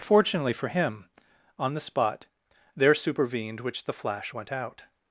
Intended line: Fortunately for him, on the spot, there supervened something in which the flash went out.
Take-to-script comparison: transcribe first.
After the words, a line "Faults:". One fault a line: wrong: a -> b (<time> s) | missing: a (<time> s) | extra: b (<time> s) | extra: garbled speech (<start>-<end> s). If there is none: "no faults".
Fortunately for him, on the spot, there supervened which the flash went out.
Faults:
missing: something in (3.6 s)